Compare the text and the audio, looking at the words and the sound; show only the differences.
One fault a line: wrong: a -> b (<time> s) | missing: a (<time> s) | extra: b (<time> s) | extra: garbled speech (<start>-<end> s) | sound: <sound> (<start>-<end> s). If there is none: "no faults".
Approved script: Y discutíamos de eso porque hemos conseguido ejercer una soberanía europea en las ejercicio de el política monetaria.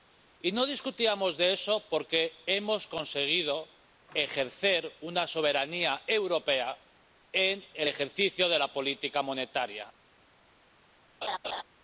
extra: no (0.5 s)
wrong: las -> el (7.7 s)
wrong: el -> la (8.6 s)
sound: laugh (11.2-11.6 s)